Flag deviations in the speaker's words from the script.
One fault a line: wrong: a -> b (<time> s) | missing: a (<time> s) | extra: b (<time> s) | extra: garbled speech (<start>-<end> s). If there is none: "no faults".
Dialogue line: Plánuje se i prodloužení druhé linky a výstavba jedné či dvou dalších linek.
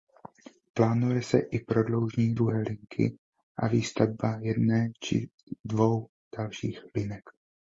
no faults